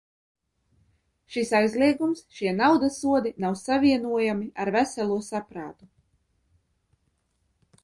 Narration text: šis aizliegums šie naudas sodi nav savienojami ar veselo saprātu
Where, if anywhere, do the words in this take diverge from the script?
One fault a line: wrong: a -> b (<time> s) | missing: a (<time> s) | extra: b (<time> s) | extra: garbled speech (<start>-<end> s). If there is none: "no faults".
no faults